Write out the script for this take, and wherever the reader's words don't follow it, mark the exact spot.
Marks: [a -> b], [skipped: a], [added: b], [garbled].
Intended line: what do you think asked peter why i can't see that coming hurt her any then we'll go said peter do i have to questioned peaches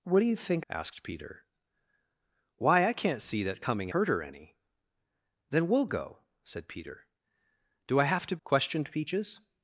what do you think asked peter why i can't see that coming hurt her any then we'll go said peter do i have to questioned peaches